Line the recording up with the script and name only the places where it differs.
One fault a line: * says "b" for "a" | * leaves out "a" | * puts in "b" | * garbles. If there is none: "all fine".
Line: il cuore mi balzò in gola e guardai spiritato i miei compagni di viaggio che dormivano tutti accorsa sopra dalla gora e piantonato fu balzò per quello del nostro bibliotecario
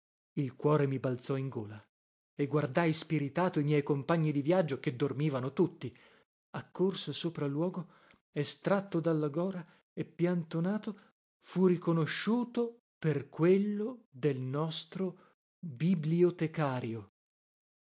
* puts in "luogo estratto"
* says "riconosciuto" for "balzò"